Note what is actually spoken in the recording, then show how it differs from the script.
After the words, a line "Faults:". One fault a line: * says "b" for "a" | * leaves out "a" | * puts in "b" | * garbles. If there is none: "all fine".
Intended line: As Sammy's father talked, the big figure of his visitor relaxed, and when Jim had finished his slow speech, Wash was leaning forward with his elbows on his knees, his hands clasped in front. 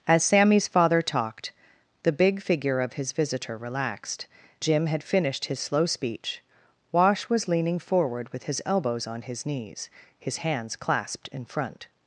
As Sammy's father talked, the big figure of his visitor relaxed, Jim had finished his slow speech, Wash was leaning forward with his elbows on his knees, his hands clasped in front.
Faults:
* leaves out "and when"